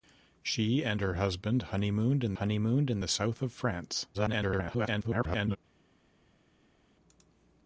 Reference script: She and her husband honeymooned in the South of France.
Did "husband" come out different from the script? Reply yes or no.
no